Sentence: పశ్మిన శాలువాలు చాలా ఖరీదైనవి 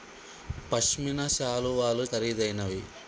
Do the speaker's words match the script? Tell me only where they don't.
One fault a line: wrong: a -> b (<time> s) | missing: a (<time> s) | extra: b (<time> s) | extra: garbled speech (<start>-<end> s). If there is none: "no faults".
missing: చాలా (2.1 s)